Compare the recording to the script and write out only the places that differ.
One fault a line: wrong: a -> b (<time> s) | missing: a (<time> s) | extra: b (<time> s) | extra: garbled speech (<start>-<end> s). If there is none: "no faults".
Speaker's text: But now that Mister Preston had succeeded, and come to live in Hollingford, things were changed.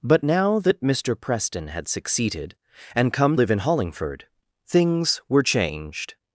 missing: to (3.4 s)